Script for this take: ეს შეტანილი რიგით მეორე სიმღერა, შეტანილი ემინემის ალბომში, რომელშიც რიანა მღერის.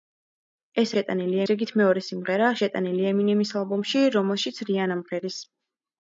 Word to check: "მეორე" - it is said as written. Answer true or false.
true